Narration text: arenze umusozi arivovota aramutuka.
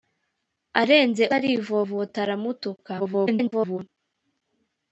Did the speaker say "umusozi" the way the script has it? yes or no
no